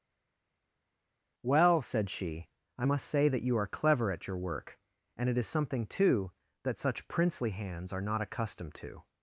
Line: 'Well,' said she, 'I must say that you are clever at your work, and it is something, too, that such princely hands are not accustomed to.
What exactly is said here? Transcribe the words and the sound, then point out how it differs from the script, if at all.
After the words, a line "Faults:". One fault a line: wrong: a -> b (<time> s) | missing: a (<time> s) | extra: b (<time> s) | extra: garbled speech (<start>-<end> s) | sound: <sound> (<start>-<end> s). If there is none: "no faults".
'Well,' said she, 'I must say that you are clever at your work, and it is something, too, that such princely hands are not accustomed to.
Faults:
no faults